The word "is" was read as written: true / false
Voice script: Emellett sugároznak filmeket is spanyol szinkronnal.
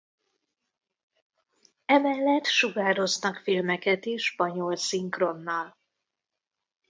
true